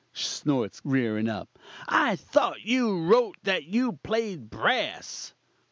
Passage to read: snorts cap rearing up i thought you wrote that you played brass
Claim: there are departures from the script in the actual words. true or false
true